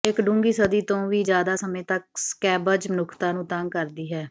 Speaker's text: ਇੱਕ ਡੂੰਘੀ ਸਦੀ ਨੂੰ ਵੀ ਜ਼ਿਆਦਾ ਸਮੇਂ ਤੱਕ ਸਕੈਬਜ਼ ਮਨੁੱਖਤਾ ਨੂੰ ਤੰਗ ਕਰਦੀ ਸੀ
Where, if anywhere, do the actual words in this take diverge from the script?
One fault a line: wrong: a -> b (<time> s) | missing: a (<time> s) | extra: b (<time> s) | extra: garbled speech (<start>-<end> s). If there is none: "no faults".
wrong: ਨੂੰ -> ਤੋਂ (0.8 s)
wrong: ਸੀ -> ਹੈ (4.1 s)